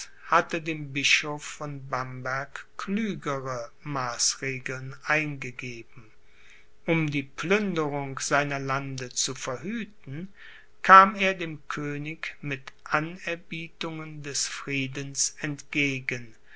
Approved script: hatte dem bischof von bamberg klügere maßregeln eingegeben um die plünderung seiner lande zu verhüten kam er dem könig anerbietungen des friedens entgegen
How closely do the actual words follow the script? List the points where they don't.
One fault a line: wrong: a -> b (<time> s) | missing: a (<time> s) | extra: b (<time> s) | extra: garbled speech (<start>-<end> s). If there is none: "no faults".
extra: mit (12.4 s)